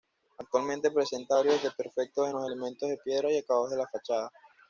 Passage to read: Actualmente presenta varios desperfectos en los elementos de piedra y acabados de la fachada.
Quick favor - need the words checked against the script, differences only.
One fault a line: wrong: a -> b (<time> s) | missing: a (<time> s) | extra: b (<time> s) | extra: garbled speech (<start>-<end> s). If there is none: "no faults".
no faults